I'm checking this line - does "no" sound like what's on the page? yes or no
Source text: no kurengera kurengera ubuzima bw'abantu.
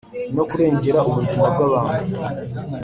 yes